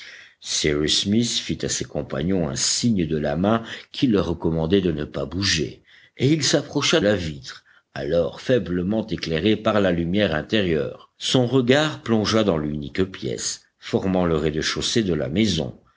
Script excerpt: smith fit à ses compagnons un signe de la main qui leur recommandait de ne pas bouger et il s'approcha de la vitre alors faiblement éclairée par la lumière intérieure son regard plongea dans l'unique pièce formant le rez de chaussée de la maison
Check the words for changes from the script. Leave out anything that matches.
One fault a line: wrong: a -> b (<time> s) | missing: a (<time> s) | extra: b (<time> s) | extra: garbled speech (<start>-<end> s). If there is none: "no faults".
missing: de (7.0 s)